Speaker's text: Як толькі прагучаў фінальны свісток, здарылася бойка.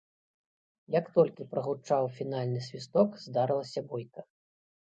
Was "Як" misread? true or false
false